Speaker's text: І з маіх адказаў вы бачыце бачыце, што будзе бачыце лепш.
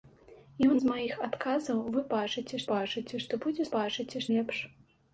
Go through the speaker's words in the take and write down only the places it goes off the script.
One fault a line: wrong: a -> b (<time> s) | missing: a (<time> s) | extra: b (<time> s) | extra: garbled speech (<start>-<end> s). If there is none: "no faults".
no faults